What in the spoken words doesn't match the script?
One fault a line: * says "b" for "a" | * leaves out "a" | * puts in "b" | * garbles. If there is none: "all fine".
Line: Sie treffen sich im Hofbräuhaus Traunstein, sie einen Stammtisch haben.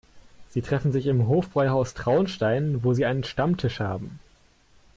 * puts in "wo"